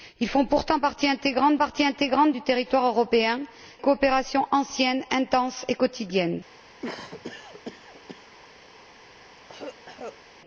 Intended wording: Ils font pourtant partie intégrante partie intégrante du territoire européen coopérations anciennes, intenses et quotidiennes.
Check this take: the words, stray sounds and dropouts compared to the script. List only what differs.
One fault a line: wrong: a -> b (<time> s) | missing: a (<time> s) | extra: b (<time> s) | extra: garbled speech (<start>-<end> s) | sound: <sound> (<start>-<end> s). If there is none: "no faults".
sound: cough (6.8-8.4 s)
sound: cough (9.4-10.2 s)